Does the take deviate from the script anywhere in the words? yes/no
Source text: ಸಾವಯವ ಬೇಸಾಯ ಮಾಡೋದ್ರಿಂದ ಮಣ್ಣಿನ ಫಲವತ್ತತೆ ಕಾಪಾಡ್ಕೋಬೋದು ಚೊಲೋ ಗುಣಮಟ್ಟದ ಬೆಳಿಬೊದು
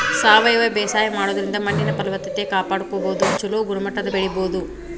no